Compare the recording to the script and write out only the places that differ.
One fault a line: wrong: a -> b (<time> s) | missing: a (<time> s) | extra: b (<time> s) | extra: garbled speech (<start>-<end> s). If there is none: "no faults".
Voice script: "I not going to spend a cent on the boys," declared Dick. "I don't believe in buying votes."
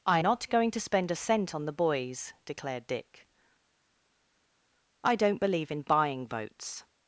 no faults